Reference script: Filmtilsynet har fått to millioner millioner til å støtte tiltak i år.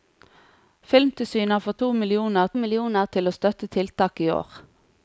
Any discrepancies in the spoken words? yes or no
no